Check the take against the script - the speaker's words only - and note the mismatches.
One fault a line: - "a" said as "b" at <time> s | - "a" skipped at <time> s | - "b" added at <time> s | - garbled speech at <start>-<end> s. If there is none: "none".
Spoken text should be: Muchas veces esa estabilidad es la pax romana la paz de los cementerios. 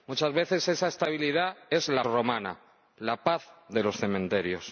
- "pax" skipped at 2.0 s